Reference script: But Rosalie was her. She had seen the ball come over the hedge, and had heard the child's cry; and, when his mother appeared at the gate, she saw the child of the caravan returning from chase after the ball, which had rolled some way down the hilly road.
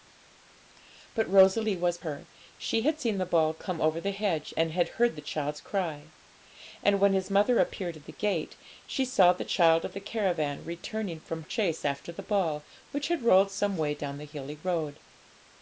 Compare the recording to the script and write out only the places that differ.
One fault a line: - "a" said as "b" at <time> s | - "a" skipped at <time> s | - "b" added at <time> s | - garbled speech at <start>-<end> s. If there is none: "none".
none